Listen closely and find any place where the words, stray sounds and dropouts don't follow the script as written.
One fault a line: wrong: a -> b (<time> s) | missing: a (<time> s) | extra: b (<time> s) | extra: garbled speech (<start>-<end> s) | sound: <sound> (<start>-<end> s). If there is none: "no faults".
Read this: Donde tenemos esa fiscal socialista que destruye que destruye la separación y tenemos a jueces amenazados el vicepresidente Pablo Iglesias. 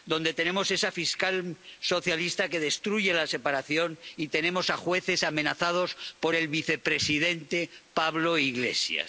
missing: que destruye (3.1 s)
extra: por (6.2 s)